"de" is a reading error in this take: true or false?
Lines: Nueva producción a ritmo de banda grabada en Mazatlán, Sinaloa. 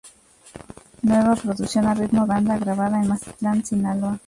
true